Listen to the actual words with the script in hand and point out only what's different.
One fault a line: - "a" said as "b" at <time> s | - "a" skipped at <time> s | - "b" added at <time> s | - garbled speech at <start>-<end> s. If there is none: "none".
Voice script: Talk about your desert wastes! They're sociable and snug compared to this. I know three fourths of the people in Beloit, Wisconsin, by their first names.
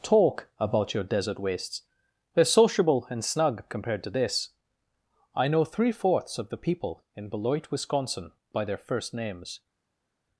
none